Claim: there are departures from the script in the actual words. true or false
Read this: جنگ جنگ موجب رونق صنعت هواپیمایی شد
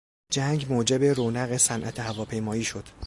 true